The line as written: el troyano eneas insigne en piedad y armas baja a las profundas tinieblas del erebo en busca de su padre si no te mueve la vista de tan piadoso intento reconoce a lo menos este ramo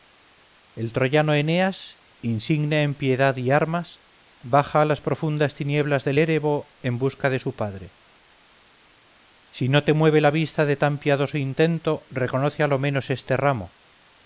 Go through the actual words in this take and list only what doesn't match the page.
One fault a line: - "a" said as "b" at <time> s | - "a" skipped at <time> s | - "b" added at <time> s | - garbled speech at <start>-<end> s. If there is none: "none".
none